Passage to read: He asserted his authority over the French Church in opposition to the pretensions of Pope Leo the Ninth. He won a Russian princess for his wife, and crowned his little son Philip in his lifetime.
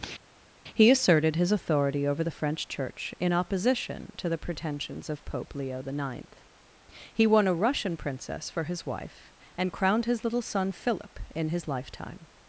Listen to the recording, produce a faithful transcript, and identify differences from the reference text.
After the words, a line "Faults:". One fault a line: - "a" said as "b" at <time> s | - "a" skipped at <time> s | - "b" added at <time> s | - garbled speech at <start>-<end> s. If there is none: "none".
He asserted his authority over the French Church in opposition to the pretensions of Pope Leo the Ninth. He won a Russian princess for his wife, and crowned his little son Philip in his lifetime.
Faults:
none